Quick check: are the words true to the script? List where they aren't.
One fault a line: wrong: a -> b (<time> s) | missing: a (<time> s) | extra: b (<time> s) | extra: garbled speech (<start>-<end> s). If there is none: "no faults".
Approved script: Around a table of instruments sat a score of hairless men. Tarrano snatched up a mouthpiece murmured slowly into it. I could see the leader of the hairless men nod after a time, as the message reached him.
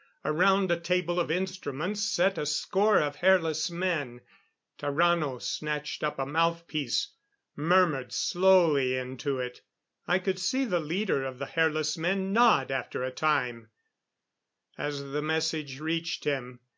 no faults